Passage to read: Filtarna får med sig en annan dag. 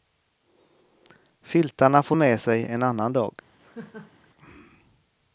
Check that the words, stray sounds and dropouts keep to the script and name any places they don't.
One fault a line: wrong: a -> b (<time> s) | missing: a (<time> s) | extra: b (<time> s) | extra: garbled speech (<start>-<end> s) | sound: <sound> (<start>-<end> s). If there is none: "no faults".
sound: laugh (3.6-4.3 s)